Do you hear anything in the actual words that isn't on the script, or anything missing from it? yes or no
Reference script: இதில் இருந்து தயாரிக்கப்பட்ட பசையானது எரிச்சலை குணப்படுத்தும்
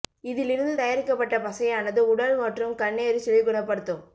yes